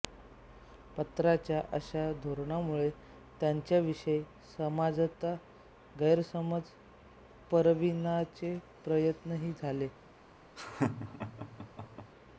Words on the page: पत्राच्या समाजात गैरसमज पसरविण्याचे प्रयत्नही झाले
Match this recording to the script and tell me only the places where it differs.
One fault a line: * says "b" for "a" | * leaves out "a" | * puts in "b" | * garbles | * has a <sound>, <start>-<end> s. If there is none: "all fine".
* puts in "अशा धोरणामुळे त्यांच्याविषयी"
* has a laugh, 10.6-12.1 s